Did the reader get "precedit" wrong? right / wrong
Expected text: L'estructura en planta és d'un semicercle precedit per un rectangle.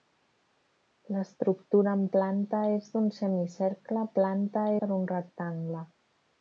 wrong